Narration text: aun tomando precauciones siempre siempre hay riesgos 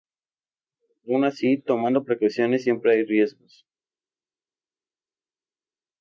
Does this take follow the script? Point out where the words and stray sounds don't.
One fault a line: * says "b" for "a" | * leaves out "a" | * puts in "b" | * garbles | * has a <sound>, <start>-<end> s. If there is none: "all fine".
* puts in "así"
* leaves out "siempre"